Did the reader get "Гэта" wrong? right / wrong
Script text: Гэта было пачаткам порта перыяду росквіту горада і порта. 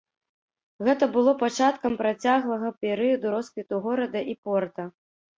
right